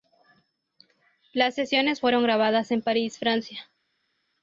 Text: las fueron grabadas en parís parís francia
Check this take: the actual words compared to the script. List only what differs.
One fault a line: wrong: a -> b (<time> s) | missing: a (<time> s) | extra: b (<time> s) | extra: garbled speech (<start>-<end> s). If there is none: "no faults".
extra: sesiones (1.5 s)
missing: parís (3.2 s)